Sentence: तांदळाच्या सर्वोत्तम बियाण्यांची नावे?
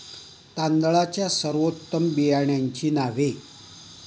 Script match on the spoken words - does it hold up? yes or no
yes